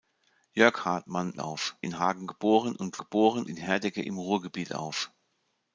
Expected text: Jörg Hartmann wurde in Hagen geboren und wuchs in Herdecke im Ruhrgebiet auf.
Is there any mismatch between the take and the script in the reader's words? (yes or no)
yes